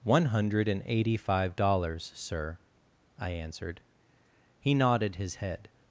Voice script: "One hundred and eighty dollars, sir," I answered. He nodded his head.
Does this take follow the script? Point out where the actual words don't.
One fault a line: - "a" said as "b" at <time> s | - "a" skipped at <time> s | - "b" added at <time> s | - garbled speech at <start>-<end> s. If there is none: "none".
- "five" added at 1.2 s